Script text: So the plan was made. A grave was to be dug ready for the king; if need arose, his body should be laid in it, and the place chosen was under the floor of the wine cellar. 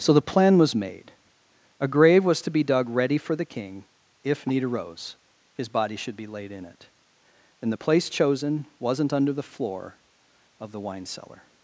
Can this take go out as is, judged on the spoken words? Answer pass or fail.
fail